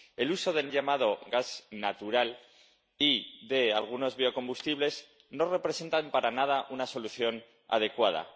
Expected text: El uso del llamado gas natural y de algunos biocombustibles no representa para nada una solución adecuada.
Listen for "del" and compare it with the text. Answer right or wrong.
right